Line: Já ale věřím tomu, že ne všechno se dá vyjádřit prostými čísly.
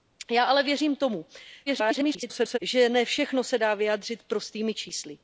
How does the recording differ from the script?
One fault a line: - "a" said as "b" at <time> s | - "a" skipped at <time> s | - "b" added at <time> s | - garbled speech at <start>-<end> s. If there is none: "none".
- garbled speech at 1.7-2.6 s